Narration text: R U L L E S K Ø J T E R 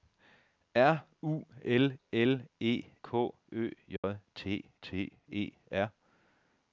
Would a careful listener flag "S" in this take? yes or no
yes